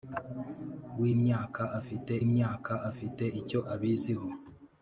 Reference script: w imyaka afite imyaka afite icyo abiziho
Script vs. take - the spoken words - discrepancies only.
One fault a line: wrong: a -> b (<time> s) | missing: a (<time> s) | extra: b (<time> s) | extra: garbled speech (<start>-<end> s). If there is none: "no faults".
no faults